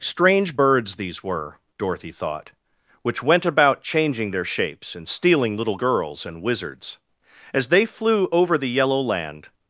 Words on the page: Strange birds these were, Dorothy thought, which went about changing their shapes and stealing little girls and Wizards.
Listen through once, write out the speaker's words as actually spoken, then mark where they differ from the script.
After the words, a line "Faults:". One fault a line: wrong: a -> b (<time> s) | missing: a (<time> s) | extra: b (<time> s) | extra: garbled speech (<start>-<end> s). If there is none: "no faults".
Strange birds these were, Dorothy thought, which went about changing their shapes and stealing little girls and Wizards. As they flew over the yellow land
Faults:
extra: As they flew over the yellow land (7.5 s)